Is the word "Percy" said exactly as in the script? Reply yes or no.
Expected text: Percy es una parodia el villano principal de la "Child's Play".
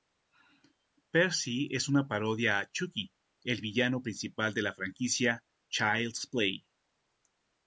yes